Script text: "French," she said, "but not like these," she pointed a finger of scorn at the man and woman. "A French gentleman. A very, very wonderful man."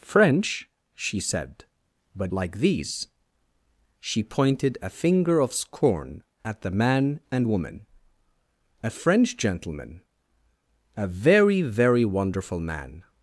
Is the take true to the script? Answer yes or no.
no